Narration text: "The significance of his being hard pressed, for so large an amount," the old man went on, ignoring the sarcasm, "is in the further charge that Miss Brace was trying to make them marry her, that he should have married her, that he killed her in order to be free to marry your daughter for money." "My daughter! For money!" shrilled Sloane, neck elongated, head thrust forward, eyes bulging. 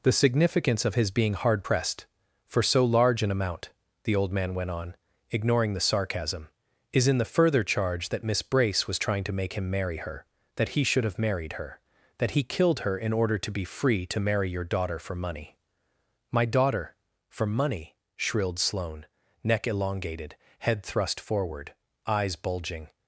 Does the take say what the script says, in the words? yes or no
no